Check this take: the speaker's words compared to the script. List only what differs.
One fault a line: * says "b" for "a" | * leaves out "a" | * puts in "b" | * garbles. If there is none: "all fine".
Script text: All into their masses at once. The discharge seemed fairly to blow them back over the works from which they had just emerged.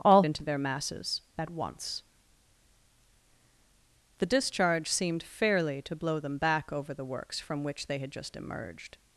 all fine